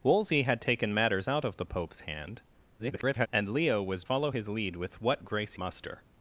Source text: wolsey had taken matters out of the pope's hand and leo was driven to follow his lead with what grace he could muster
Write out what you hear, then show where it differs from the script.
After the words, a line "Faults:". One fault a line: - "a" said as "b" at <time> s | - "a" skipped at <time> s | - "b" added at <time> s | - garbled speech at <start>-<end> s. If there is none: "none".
wolsey had taken matters out of the pope's hand [garbled] and leo was follow his lead with what grace muster
Faults:
- garbled speech at 2.8-3.3 s
- "driven to" skipped at 4.0 s
- "he could" skipped at 5.5 s